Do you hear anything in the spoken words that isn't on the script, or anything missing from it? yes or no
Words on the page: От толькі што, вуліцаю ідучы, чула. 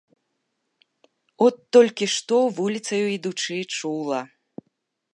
no